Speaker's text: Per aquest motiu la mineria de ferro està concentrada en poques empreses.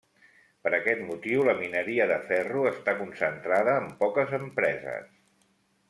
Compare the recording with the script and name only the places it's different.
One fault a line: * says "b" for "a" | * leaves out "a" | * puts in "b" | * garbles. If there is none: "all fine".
all fine